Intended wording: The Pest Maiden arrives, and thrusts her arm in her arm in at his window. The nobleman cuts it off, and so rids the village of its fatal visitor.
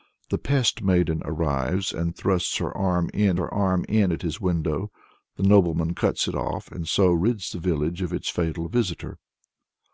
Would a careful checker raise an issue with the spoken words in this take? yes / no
no